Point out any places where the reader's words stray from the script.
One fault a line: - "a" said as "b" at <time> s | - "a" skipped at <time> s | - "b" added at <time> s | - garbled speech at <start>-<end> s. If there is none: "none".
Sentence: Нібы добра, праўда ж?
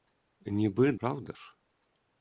- "добра" skipped at 0.9 s